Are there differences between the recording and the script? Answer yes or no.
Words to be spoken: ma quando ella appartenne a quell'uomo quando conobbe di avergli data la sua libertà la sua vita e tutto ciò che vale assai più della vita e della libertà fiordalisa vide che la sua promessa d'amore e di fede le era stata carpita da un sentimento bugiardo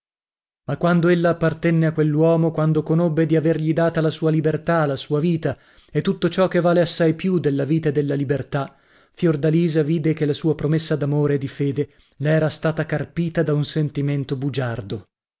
no